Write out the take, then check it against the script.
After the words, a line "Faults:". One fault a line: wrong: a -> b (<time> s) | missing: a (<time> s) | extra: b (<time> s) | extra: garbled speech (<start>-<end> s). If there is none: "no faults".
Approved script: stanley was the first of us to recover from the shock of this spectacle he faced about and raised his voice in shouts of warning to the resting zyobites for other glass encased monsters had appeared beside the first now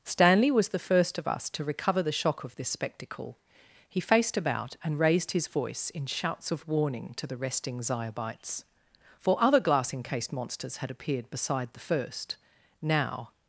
stanley was the first of us to recover the shock of this spectacle he faced about and raised his voice in shouts of warning to the resting zyobites for other glass encased monsters had appeared beside the first now
Faults:
missing: from (2.0 s)